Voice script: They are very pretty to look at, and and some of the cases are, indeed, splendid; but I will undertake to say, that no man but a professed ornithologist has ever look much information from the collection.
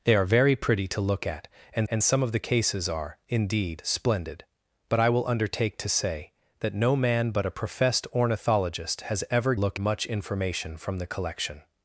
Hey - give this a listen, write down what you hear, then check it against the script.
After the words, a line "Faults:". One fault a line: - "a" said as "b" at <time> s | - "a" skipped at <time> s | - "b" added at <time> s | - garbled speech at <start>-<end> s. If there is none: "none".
They are very pretty to look at, and and some of the cases are, indeed, splendid; but I will undertake to say, that no man but a professed ornithologist has ever look much information from the collection.
Faults:
none